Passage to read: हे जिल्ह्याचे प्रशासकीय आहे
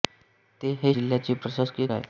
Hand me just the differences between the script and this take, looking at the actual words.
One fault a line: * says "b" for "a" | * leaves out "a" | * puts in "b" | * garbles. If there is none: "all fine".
all fine